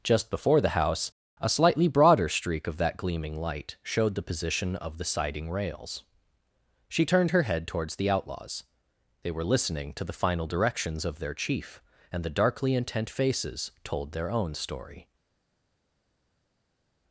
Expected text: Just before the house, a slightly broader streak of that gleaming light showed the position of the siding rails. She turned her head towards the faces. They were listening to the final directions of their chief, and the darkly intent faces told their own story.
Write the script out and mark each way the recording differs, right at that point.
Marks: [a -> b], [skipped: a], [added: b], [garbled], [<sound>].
Just before the house, a slightly broader streak of that gleaming light showed the position of the siding rails. She turned her head towards the [faces. -> outlaws] They were listening to the final directions of their chief, and the darkly intent faces told their own story.